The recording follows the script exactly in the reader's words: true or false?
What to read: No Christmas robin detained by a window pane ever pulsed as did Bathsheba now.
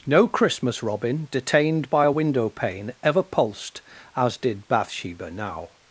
true